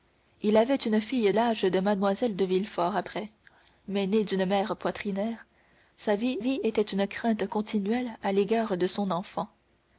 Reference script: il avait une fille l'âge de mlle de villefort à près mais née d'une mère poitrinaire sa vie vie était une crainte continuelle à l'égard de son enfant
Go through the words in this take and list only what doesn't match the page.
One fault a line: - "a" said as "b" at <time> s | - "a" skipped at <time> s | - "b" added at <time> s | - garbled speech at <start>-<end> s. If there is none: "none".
none